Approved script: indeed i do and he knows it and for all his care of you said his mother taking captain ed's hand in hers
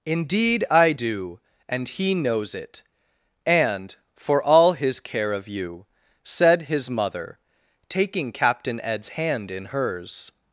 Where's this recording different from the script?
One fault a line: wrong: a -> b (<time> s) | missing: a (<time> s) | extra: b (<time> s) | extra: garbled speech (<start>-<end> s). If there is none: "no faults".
no faults